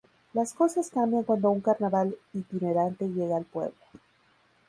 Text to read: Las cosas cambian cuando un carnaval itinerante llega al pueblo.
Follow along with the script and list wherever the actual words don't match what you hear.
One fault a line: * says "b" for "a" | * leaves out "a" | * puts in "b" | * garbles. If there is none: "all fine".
all fine